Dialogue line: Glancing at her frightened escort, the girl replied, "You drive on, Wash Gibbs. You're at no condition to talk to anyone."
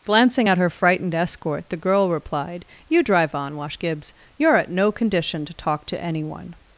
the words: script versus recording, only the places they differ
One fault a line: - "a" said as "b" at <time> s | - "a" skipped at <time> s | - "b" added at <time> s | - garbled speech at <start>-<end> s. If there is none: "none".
none